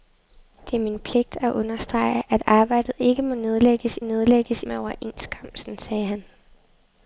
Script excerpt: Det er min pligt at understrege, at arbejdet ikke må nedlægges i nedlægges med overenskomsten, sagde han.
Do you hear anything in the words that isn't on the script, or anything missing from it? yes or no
no